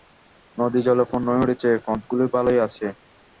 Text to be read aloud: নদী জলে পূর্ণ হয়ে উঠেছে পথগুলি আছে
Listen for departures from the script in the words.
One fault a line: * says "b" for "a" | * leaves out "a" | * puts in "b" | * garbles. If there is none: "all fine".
* puts in "ভালই"